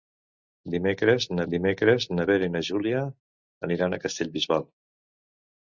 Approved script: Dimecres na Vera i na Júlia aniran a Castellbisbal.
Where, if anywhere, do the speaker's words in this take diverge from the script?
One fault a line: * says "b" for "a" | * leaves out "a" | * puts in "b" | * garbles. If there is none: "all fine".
* puts in "dimecres na"